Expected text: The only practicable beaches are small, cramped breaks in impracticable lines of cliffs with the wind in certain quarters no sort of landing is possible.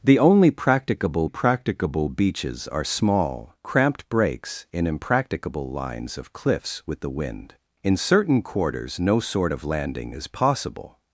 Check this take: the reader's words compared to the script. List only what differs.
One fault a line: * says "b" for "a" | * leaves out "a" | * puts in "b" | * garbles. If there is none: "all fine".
* puts in "practicable"